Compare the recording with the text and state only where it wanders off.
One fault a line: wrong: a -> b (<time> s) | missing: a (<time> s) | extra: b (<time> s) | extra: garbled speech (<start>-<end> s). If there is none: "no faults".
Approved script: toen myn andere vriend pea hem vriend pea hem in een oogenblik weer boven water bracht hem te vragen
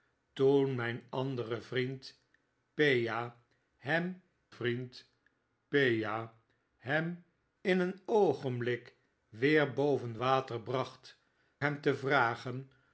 no faults